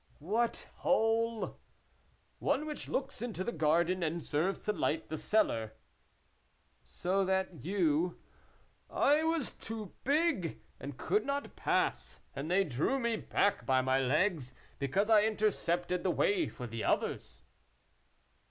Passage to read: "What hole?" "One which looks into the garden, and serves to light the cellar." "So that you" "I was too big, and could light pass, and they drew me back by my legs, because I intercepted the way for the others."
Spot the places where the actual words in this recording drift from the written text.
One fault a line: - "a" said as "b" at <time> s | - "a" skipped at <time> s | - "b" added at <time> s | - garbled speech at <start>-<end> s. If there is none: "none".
- "light" said as "not" at 11.2 s